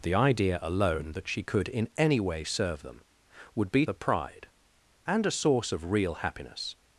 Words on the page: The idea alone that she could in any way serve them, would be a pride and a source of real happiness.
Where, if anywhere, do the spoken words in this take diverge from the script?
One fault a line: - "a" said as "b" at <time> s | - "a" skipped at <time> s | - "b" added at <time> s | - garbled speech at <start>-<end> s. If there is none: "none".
none